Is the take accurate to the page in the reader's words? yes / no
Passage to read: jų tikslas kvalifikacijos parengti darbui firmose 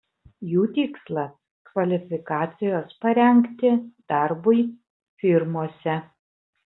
yes